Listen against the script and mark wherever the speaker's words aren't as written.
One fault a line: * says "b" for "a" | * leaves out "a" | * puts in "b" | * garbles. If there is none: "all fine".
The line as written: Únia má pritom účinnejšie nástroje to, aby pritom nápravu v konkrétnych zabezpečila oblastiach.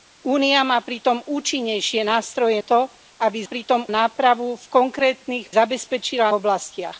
all fine